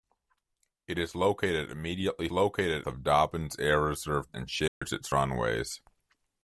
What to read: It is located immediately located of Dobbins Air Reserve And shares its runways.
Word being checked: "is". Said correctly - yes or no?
yes